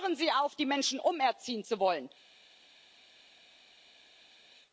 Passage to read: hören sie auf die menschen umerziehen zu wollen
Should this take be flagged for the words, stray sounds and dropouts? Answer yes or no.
no